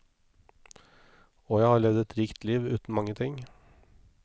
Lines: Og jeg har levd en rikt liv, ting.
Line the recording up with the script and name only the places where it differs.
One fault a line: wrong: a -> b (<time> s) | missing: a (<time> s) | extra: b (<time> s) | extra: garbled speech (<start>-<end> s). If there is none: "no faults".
wrong: en -> et (2.0 s)
extra: uten mange (2.7 s)